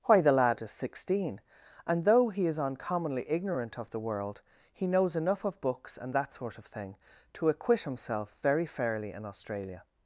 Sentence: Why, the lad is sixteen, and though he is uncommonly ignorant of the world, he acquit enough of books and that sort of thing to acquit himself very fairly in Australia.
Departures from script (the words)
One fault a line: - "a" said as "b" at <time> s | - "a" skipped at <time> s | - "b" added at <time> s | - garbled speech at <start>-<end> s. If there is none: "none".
- "acquit" said as "knows" at 4.9 s